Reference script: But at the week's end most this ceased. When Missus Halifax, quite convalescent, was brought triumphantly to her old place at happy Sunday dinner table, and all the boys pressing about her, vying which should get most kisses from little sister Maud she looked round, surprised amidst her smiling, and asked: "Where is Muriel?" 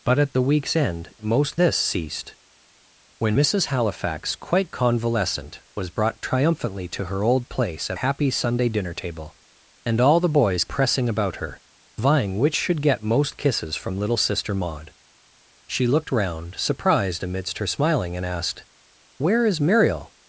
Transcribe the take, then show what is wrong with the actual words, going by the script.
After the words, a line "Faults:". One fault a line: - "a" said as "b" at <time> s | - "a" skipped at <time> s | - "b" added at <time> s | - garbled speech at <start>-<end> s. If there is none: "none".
But at the week's end most this ceased. When Missus Halifax, quite convalescent, was brought triumphantly to her old place at happy Sunday dinner table, and all the boys pressing about her, vying which should get most kisses from little sister Maud she looked round, surprised amidst her smiling, and asked: "Where is Muriel?"
Faults:
none